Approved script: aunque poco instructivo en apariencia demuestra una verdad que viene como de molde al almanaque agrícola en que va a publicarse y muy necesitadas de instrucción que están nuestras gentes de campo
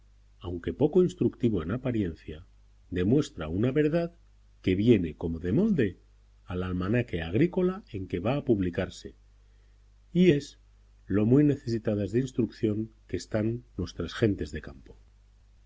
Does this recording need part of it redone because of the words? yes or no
yes